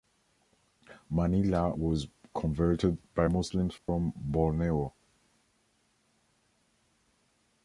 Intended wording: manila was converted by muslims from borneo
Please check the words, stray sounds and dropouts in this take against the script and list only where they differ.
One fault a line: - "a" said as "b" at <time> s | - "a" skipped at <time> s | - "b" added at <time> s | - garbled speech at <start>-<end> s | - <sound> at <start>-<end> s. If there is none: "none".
- dropout at 3.8-3.9 s